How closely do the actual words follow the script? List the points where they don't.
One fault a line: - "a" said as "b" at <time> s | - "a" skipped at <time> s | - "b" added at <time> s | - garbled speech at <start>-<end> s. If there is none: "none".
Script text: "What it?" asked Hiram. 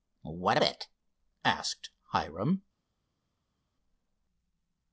none